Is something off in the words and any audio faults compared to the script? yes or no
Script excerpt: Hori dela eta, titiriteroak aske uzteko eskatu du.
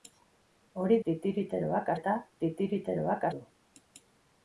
yes